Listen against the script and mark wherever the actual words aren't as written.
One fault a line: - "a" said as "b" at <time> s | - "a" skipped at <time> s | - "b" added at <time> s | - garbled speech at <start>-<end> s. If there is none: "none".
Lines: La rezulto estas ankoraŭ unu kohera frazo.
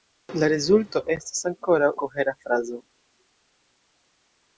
- "unu" skipped at 1.9 s